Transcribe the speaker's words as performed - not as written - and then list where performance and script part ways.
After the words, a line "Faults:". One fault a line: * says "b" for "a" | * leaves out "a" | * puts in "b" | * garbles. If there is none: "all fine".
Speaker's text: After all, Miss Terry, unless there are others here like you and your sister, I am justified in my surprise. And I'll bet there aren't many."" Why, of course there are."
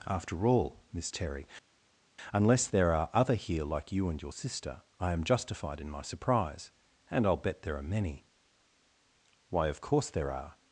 After all, Miss Terry, unless there are other here like you and your sister, I am justified in my surprise. And I'll bet there are many."" Why, of course there are."
Faults:
* says "other" for "others"
* says "are" for "aren't"